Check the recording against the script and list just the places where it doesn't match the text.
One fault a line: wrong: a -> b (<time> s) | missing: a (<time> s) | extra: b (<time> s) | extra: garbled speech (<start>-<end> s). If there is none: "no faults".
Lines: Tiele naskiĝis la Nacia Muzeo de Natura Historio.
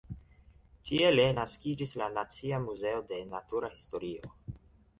no faults